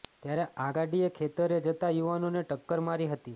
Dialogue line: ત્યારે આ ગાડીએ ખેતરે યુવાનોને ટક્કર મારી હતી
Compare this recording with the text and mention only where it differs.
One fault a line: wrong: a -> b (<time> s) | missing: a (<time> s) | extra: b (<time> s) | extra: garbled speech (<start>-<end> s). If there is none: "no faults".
extra: જતા (1.6 s)